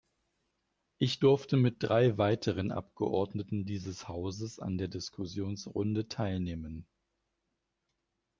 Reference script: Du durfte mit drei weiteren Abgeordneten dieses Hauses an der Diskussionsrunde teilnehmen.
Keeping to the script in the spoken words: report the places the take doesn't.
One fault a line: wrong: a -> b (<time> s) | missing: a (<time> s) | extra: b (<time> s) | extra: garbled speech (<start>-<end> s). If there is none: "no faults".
wrong: Du -> Ich (1.0 s)